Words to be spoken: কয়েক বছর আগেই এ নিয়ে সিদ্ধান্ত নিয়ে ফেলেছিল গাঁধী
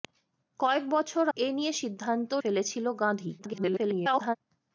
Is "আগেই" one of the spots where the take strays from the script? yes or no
yes